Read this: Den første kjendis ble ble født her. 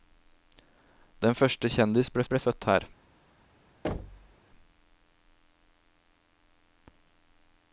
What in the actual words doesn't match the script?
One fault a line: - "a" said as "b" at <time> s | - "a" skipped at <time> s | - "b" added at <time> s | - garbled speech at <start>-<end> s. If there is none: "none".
none